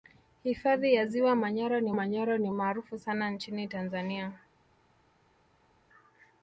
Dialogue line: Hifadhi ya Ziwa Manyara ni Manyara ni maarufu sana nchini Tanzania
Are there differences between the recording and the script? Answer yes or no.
no